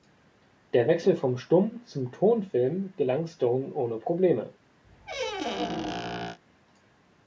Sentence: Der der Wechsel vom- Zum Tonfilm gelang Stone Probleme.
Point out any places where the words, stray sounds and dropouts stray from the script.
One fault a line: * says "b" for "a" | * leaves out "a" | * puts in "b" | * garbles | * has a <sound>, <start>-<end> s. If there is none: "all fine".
* leaves out "der"
* puts in "Stumm"
* puts in "ohne"
* has a squeak, 4.8-6.4 s